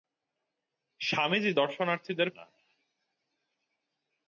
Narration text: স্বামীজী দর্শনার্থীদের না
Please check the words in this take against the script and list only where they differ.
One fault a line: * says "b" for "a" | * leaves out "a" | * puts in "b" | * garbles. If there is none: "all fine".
all fine